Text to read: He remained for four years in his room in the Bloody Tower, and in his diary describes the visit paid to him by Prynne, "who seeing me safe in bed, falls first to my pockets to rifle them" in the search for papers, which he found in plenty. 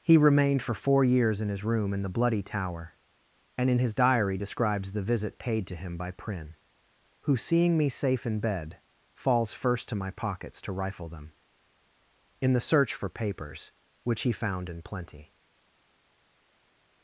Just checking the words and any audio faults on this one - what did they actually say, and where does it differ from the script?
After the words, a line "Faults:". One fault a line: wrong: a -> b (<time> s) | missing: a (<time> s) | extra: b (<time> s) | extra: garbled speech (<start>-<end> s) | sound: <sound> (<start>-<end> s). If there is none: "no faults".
He remained for four years in his room in the Bloody Tower, and in his diary describes the visit paid to him by Prynne, "who seeing me safe in bed, falls first to my pockets to rifle them" in the search for papers, which he found in plenty.
Faults:
no faults